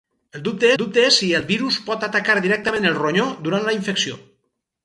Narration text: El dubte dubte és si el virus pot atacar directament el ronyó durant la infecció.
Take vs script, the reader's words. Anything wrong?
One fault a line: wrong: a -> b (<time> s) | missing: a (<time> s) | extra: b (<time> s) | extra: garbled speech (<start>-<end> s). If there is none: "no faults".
no faults